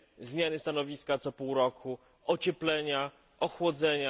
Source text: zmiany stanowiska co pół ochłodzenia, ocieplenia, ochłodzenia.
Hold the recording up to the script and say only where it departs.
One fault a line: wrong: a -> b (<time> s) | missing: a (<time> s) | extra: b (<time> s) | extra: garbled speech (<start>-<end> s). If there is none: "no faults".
wrong: ochłodzenia -> roku (1.5 s)